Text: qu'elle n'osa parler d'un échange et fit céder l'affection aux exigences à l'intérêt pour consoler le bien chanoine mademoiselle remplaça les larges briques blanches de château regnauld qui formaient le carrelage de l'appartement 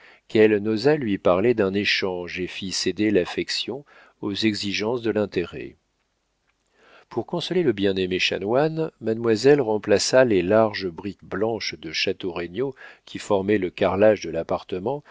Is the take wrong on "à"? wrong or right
wrong